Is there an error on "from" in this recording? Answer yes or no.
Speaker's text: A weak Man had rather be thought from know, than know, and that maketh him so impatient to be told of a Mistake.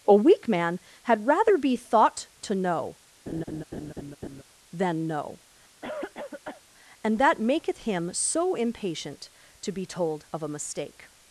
yes